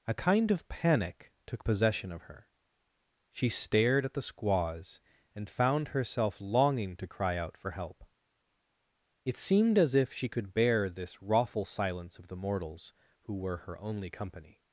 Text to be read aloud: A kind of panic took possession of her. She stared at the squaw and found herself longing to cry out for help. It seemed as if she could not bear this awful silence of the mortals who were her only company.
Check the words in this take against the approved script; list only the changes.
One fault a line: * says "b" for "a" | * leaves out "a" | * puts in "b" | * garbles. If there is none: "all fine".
* says "squaws" for "squaw"
* leaves out "not"